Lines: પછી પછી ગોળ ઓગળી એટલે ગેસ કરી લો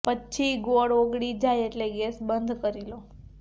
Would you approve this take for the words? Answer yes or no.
no